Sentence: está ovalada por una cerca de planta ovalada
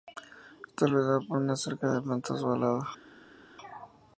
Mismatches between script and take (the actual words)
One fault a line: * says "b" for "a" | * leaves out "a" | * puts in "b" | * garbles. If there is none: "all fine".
* says "rodeada" for "ovalada"